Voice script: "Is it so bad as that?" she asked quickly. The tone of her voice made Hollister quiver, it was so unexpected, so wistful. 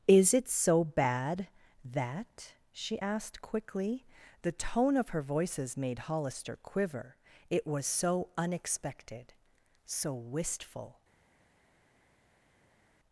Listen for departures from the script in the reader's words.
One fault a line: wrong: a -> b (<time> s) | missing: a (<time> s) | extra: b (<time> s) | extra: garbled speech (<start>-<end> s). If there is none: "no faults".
missing: as (1.5 s)
wrong: voice -> voices (5.2 s)